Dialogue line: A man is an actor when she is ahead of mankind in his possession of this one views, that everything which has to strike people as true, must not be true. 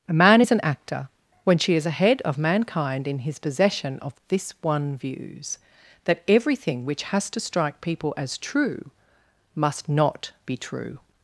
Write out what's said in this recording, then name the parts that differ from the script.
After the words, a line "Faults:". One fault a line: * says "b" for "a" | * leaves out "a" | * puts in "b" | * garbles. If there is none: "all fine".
A man is an actor when she is ahead of mankind in his possession of this one views, that everything which has to strike people as true, must not be true.
Faults:
all fine